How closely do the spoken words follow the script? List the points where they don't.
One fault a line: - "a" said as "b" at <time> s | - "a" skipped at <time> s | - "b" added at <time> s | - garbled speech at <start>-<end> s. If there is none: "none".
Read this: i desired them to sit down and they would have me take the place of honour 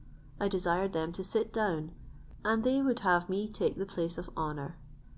none